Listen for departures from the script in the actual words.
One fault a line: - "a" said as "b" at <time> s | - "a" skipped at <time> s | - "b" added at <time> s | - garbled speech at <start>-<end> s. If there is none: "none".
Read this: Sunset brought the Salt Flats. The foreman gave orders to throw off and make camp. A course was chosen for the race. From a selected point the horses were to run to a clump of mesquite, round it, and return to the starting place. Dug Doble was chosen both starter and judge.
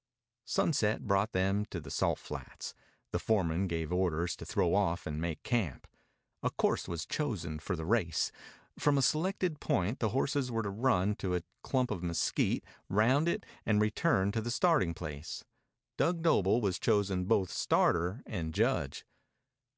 - "them to" added at 1.3 s